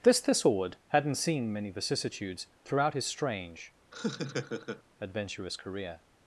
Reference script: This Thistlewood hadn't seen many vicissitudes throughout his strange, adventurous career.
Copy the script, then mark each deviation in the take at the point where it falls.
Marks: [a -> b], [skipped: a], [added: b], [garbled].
This Thistlewood hadn't seen many vicissitudes throughout his strange, adventurous career.